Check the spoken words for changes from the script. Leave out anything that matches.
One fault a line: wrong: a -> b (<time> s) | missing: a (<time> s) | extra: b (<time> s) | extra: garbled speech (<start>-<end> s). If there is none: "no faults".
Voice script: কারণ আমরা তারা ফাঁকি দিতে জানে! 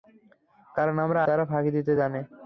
no faults